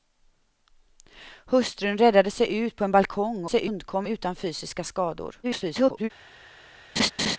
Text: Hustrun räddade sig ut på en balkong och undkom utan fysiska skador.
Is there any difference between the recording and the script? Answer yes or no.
yes